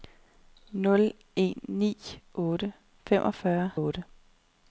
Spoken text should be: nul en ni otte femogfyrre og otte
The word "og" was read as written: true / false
true